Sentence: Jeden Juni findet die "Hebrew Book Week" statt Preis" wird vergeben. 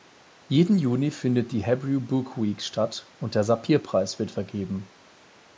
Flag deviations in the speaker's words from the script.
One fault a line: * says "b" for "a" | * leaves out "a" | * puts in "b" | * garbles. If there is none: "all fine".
* puts in "und der Sapir"